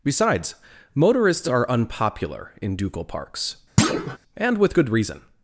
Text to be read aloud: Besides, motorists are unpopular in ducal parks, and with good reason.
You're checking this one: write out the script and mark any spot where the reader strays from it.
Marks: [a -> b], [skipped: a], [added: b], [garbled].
Besides, motorists are unpopular in ducal parks, and with good reason.